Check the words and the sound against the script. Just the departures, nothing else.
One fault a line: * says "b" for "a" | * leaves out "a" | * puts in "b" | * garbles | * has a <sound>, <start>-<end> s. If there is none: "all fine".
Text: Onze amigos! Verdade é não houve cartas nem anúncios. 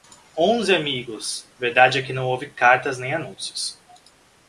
* puts in "que"